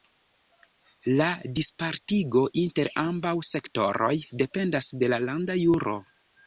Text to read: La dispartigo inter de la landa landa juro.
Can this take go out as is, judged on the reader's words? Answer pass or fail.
fail